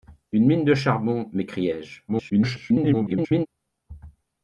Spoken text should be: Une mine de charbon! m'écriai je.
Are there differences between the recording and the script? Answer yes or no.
yes